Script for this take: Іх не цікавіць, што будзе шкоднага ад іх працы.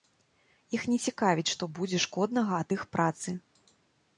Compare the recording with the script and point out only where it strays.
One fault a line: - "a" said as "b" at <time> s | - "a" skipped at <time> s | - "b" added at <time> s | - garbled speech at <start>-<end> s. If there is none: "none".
none